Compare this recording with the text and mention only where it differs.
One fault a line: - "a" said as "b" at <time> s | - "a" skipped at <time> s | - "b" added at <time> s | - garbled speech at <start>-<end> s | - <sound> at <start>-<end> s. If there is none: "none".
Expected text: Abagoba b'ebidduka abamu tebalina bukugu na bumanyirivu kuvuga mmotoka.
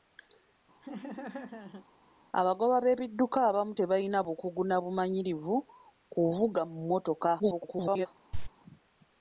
- laugh at 0.8-1.9 s
- garbled speech at 7.4-8.1 s
- cough at 8.3-8.5 s